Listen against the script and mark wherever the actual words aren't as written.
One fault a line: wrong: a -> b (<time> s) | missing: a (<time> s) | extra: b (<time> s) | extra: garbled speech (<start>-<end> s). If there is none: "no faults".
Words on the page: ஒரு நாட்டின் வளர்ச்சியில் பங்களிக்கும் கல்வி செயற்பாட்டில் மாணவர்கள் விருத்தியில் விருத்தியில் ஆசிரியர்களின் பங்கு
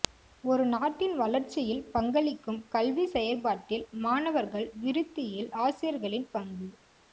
missing: விருத்தியில் (5.5 s)